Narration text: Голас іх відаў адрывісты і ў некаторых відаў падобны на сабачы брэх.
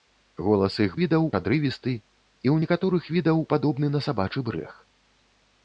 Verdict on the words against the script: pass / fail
pass